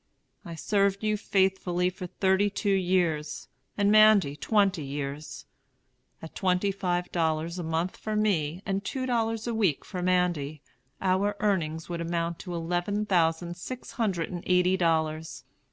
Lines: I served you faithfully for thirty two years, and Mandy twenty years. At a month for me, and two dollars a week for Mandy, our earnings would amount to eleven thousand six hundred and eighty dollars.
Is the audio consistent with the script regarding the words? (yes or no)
no